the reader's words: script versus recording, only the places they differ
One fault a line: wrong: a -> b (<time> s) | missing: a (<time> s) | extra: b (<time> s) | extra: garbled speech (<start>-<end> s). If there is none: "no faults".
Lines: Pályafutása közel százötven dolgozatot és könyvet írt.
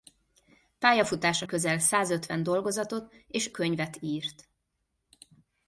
no faults